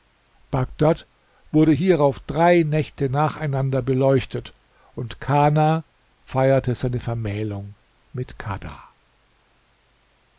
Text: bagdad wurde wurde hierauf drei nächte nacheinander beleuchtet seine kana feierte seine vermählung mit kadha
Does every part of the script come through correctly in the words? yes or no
no